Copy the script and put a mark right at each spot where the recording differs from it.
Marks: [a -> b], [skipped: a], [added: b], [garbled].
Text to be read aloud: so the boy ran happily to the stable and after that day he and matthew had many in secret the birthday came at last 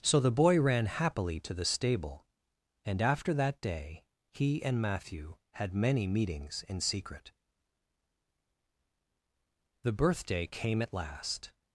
so the boy ran happily to the stable and after that day he and matthew had many [added: meetings] in secret the birthday came at last